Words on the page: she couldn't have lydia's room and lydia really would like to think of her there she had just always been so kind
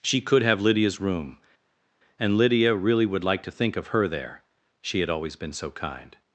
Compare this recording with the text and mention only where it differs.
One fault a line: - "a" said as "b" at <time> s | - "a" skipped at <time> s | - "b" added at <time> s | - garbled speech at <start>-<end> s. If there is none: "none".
- "couldn't" said as "could" at 0.2 s
- "just" skipped at 5.1 s